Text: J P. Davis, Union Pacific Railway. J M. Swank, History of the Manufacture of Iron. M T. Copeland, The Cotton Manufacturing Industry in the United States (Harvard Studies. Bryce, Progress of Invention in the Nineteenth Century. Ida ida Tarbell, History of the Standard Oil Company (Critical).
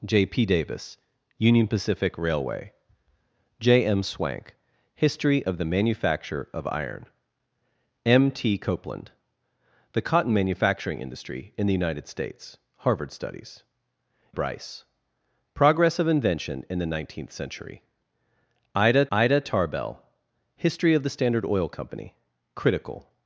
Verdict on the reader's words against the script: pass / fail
pass